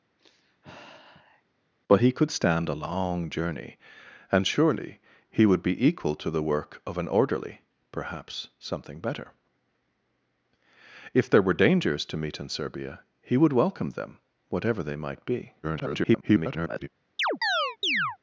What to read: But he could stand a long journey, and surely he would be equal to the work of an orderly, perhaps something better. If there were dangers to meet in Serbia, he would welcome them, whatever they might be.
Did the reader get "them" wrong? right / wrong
right